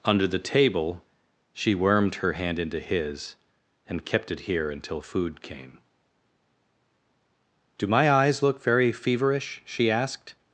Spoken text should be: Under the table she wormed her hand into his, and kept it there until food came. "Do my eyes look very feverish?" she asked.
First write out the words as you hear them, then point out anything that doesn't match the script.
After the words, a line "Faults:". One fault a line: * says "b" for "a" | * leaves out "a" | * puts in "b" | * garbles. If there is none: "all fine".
Under the table she wormed her hand into his, and kept it here until food came. "Do my eyes look very feverish?" she asked.
Faults:
* says "here" for "there"